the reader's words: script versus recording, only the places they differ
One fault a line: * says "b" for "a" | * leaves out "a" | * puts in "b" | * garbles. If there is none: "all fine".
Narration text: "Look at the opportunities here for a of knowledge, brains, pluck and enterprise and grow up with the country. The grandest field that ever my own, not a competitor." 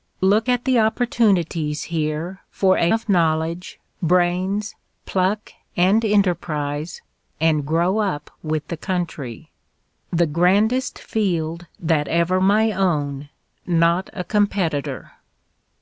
all fine